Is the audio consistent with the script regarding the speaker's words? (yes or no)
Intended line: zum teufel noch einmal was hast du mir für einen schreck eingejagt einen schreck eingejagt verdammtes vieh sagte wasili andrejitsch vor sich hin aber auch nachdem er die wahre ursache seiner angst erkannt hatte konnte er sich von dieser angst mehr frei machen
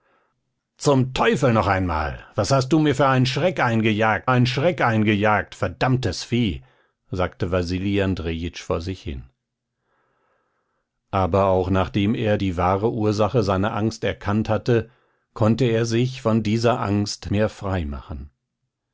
yes